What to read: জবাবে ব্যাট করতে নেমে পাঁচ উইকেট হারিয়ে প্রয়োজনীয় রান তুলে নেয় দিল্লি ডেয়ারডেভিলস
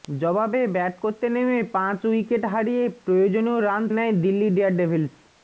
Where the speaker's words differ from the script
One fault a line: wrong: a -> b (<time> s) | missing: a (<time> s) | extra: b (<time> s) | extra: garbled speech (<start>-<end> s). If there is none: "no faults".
missing: তুলে (3.8 s)